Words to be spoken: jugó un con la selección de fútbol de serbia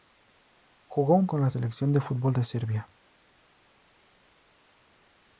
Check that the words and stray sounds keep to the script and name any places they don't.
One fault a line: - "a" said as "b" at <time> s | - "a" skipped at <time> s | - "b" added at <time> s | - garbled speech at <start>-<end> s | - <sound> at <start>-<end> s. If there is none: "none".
none